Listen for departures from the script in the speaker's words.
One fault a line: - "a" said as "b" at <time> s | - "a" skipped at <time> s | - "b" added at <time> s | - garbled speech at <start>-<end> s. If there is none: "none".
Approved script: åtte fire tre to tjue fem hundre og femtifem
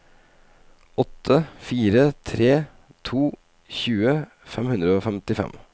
none